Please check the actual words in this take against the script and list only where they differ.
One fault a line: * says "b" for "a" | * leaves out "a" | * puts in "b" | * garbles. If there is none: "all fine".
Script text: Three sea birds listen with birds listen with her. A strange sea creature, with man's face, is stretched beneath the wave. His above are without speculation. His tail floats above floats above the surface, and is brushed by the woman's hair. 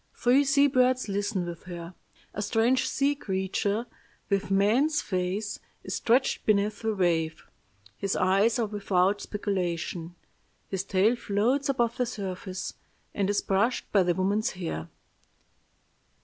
* leaves out "birds listen with"
* says "eyes" for "above"
* leaves out "floats above"